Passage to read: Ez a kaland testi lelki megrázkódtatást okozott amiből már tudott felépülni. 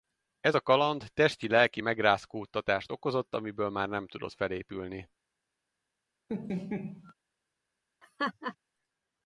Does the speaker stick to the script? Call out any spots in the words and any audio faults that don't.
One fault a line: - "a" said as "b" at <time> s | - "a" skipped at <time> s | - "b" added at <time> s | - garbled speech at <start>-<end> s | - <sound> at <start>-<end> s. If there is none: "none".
- "nem" added at 3.9 s
- laugh at 6.3-7.1 s
- laugh at 8.0-8.6 s